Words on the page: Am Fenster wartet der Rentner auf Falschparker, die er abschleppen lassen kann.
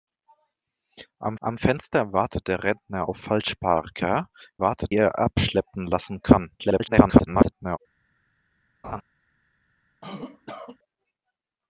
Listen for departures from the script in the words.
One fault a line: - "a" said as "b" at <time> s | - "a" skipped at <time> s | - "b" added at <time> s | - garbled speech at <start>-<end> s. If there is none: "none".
- "am" added at 1.4 s
- "die" said as "wartet" at 4.6 s
- garbled speech at 6.6-7.8 s